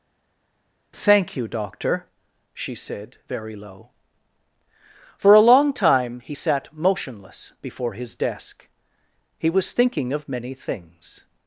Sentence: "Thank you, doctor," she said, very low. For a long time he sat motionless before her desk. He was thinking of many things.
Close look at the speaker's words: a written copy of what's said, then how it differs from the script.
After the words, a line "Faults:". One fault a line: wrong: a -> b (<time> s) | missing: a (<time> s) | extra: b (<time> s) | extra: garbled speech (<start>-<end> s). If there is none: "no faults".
"Thank you, doctor," she said, very low. For a long time he sat motionless before his desk. He was thinking of many things.
Faults:
wrong: her -> his (7.9 s)